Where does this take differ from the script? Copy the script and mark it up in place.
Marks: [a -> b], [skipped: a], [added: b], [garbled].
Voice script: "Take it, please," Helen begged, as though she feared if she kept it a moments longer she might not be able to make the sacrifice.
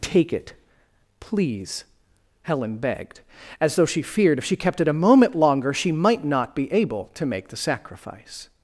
"Take it, please," Helen begged, as though she feared if she kept it a [moments -> moment] longer she might not be able to make the sacrifice.